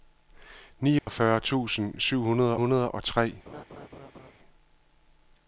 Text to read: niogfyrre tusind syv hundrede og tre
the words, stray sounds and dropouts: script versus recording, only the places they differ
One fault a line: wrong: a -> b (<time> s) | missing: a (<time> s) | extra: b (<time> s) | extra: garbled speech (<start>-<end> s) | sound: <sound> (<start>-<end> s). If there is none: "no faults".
sound: dropout (1.0-1.1 s)
extra: hundrede (2.6 s)
sound: laugh (3.5-4.3 s)